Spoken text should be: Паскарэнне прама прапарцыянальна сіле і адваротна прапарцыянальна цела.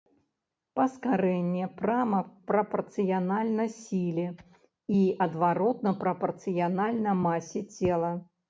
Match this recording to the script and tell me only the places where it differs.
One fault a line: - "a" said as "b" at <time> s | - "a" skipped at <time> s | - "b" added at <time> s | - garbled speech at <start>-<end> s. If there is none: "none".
- "масе" added at 7.3 s